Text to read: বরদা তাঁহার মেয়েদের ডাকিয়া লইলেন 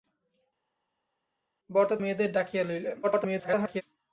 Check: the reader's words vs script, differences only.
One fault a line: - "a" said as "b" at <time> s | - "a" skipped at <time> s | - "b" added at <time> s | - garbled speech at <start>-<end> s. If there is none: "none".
- "তাঁহার" skipped at 1.9 s
- garbled speech at 3.0-3.8 s